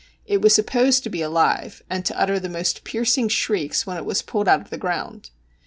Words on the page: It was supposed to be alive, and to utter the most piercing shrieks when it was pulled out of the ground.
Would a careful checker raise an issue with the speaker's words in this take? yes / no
no